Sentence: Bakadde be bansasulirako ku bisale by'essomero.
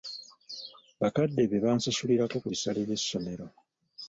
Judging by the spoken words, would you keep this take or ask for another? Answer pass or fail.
pass